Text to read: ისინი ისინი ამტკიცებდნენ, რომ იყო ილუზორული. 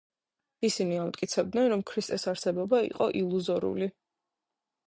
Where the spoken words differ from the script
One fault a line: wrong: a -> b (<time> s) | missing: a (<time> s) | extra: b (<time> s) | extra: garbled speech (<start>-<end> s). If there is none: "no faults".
missing: ისინი (0.9 s)
extra: ქრისტეს არსებობა (1.9 s)